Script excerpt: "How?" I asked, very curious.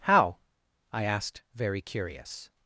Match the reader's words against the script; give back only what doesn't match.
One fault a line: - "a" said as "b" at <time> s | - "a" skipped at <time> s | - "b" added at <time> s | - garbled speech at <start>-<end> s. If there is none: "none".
none